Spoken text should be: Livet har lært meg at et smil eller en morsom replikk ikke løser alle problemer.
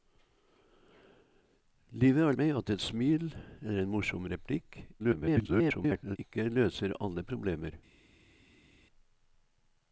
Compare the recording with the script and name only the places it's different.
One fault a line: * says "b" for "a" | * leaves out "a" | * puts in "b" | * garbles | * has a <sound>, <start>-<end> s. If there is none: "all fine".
* leaves out "lært"
* garbles